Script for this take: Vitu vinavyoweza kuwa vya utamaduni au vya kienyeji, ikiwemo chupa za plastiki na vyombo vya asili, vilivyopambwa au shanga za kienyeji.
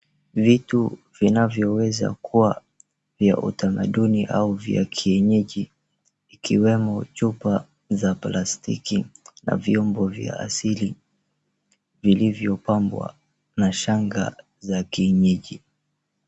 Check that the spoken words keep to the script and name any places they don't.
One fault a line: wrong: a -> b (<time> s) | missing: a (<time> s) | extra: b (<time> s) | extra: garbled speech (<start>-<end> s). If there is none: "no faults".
wrong: au -> na (13.6 s)